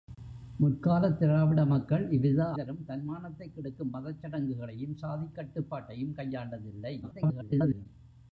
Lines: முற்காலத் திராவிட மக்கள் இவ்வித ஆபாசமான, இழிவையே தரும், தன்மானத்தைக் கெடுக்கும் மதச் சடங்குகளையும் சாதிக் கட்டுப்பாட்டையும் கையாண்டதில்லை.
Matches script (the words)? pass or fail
fail